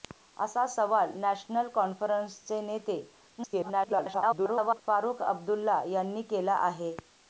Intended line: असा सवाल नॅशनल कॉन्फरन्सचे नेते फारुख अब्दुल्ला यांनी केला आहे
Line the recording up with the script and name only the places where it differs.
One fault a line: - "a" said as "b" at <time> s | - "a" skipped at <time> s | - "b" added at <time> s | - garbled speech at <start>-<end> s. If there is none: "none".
- garbled speech at 3.4-4.8 s